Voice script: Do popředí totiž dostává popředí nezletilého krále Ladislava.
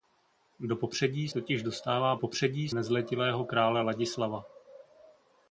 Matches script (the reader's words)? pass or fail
pass